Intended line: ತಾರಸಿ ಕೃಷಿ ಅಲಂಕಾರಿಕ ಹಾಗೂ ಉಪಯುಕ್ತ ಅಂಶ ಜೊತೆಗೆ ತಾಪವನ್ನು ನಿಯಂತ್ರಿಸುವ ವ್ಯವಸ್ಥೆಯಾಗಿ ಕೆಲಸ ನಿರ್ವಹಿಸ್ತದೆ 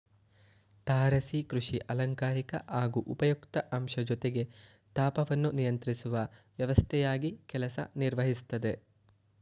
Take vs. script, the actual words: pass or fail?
pass